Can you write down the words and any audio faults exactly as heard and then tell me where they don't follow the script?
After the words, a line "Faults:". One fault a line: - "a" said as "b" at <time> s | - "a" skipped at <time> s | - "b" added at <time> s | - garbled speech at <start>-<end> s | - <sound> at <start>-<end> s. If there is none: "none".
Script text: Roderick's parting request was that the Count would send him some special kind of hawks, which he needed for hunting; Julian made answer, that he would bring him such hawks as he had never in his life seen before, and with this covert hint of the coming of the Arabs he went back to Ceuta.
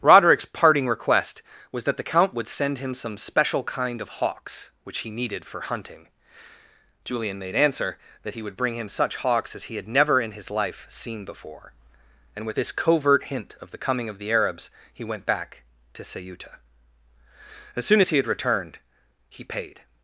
Roderick's parting request was that the Count would send him some special kind of hawks, which he needed for hunting; Julian made answer, that he would bring him such hawks as he had never in his life seen before, and with this covert hint of the coming of the Arabs he went back to Ceuta. As soon as he had returned, he paid
Faults:
- "As soon as he had returned he paid" added at 17.7 s